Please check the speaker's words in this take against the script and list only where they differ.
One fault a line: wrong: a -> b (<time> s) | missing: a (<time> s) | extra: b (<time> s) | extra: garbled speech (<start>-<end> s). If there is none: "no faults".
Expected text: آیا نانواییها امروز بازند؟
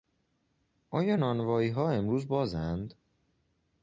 no faults